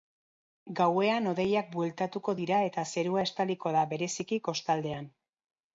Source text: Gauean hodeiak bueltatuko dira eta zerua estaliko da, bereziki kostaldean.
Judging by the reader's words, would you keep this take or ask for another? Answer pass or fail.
pass